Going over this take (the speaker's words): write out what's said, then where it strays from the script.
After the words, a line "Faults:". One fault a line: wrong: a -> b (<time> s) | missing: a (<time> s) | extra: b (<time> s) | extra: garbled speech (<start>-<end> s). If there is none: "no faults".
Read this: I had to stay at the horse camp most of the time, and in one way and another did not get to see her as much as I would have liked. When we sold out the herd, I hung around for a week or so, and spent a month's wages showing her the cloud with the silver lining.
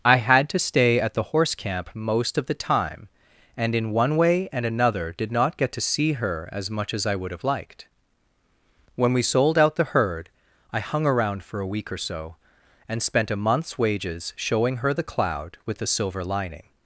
I had to stay at the horse camp most of the time, and in one way and another did not get to see her as much as I would have liked. When we sold out the herd, I hung around for a week or so, and spent a month's wages showing her the cloud with the silver lining.
Faults:
no faults